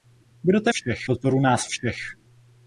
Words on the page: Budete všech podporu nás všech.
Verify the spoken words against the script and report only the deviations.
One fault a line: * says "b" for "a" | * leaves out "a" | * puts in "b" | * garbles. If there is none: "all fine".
all fine